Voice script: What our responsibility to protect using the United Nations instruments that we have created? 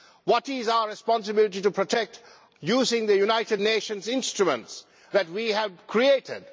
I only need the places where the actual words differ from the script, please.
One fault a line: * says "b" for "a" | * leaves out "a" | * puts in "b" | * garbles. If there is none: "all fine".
* puts in "is"